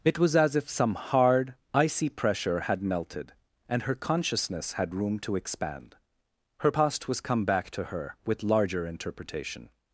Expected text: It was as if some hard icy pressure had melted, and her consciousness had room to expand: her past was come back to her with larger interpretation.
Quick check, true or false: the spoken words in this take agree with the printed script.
true